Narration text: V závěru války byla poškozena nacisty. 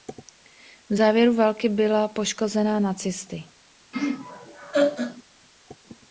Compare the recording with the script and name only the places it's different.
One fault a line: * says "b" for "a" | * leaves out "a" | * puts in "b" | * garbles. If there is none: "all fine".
all fine